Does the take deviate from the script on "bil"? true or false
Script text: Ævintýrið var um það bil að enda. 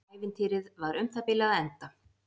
false